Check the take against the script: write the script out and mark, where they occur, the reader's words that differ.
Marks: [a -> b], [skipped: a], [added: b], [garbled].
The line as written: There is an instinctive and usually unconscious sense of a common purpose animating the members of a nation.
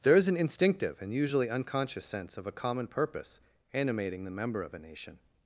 There is an instinctive and usually unconscious sense of a common purpose animating the [members -> member] of a nation.